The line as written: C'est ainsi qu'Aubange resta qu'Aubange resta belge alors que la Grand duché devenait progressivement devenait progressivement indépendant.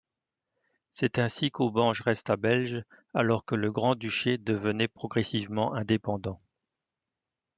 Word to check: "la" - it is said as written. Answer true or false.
false